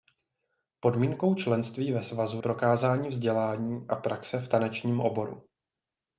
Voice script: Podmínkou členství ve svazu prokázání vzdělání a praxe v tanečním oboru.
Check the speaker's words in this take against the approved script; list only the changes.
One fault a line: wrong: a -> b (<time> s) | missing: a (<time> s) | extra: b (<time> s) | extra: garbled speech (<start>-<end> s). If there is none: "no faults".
no faults